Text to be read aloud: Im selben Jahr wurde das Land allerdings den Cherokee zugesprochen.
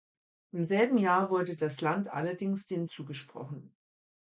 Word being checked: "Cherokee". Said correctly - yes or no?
no